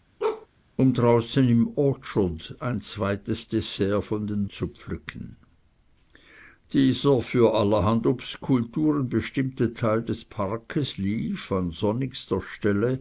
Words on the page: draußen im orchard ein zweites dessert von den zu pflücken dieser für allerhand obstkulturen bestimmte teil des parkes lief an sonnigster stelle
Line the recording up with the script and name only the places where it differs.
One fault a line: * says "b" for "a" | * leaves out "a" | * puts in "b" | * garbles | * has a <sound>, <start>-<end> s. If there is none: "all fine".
* has a bark, 0.2-0.5 s